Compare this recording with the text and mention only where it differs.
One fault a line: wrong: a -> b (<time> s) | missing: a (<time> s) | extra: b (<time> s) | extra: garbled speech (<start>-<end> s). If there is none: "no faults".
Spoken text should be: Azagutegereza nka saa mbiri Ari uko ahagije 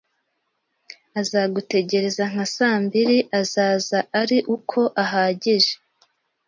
extra: Azaza (3.4 s)